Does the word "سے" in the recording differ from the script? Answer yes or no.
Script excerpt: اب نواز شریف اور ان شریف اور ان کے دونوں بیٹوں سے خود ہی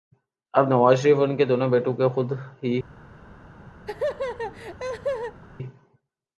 yes